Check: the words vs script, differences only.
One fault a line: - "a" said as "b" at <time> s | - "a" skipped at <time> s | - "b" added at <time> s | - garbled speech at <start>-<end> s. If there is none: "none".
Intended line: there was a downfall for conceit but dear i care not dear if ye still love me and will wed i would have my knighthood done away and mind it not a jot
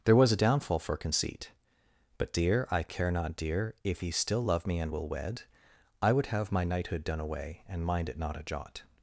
none